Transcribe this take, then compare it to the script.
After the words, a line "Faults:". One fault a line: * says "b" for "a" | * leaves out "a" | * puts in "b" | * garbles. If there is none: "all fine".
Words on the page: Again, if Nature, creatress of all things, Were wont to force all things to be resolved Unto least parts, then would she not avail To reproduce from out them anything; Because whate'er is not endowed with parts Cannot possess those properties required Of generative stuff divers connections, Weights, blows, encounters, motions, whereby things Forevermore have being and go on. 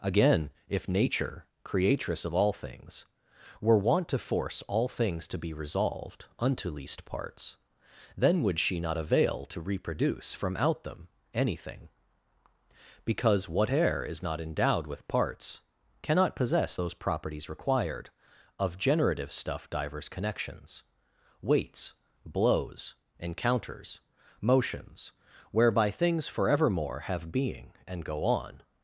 Again, if Nature, creatress of all things, Were wont to force all things to be resolved Unto least parts, then would she not avail To reproduce from out them anything; Because whate'er is not endowed with parts Cannot possess those properties required Of generative stuff divers connections, Weights, blows, encounters, motions, whereby things Forevermore have being and go on.
Faults:
all fine